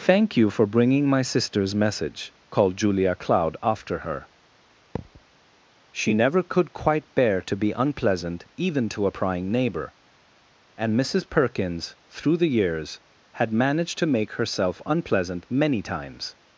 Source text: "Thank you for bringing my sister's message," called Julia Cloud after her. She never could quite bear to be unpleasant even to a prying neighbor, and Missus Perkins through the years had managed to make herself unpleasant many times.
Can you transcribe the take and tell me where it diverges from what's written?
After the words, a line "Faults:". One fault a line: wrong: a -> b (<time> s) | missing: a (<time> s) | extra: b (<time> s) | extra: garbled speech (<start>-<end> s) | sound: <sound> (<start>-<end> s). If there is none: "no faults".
"Thank you for bringing my sister's message," called Julia Cloud after her. She never could quite bear to be unpleasant even to a prying neighbor, and Missus Perkins through the years had managed to make herself unpleasant many times.
Faults:
sound: thud (5.0-5.2 s)